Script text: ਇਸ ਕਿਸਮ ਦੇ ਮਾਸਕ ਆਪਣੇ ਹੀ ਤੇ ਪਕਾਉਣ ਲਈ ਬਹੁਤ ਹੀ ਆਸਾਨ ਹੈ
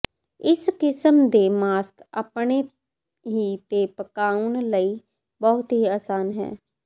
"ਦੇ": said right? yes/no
yes